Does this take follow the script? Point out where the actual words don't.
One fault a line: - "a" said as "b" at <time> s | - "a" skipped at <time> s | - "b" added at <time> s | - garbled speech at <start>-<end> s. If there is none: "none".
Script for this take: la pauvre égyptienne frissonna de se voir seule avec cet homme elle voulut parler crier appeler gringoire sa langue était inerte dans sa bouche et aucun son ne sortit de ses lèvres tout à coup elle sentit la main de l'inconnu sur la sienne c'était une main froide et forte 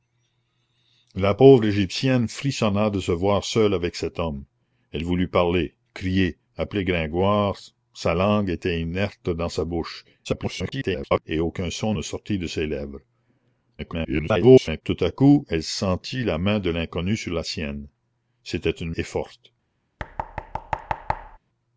- garbled speech at 10.2-11.2 s
- garbled speech at 13.8-14.8 s
- "main froide" skipped at 18.9 s